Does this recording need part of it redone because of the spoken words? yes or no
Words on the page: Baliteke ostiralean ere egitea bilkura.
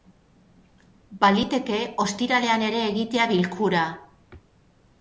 no